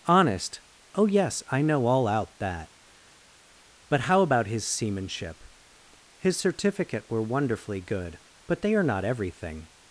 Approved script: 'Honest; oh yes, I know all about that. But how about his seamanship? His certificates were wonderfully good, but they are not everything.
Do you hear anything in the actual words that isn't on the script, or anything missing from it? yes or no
yes